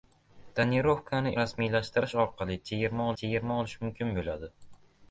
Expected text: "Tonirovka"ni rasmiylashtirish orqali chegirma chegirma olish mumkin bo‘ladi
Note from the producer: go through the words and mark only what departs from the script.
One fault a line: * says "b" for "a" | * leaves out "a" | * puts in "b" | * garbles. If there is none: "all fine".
all fine